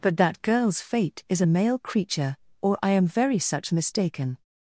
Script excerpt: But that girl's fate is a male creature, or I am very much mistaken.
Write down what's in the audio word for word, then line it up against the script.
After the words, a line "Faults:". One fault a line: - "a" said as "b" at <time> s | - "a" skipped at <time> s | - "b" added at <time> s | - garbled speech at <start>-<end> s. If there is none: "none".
But that girl's fate is a male creature, or I am very such mistaken.
Faults:
- "much" said as "such" at 3.4 s